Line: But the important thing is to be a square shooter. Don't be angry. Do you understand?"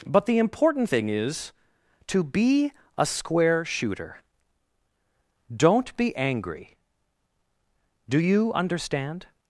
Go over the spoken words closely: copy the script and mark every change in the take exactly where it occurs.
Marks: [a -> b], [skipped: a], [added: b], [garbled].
But the important thing is to be a square shooter. Don't be angry. Do you understand?"